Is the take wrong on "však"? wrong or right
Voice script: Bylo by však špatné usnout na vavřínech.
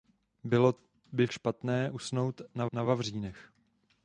wrong